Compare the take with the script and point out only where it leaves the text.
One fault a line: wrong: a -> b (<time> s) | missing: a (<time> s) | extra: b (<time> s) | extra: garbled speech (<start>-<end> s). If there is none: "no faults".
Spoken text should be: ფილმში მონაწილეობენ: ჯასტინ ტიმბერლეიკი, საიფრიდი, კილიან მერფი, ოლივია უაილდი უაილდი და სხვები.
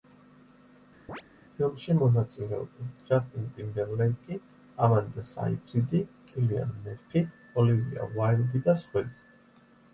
extra: ამანდა (4.9 s)
missing: უაილდი (8.7 s)